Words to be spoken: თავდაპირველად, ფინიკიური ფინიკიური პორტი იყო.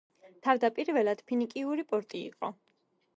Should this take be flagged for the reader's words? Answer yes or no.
yes